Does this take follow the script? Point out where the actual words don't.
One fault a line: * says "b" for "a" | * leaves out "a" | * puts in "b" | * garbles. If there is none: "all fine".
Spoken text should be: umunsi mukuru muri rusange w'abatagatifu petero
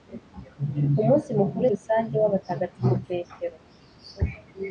* leaves out "muri"